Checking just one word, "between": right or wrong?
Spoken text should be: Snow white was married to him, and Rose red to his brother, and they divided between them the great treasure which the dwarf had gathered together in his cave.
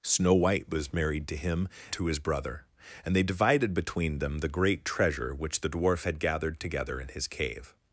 right